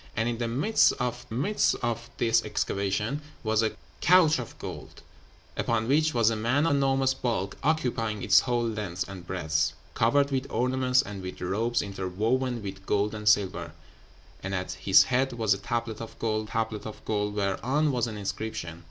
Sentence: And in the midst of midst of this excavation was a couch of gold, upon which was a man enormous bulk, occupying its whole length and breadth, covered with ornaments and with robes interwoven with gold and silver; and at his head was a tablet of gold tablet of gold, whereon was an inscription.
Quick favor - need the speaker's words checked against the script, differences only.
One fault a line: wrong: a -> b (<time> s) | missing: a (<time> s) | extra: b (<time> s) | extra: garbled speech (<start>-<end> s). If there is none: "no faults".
no faults